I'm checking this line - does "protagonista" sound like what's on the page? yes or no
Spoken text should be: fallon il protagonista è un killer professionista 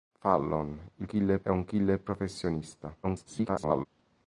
no